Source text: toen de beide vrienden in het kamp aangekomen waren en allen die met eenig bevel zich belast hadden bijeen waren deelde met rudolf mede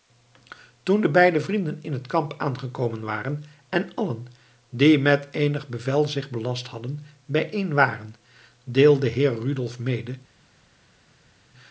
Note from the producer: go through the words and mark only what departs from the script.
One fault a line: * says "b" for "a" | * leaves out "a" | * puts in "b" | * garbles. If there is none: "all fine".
* says "heer" for "met"